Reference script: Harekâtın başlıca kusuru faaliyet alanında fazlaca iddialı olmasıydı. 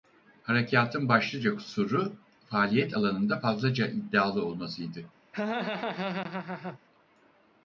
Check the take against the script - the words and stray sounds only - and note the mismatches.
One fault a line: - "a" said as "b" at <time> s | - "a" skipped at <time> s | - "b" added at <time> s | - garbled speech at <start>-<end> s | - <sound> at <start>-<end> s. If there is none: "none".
- laugh at 5.3-6.8 s